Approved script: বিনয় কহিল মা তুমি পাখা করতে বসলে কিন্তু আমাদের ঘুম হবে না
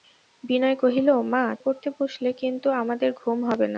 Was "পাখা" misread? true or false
true